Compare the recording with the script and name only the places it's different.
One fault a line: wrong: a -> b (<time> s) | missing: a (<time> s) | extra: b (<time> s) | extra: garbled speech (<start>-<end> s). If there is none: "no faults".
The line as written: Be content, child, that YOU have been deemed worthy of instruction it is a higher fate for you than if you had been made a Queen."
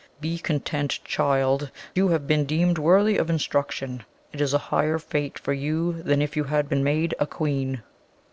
missing: that (1.7 s)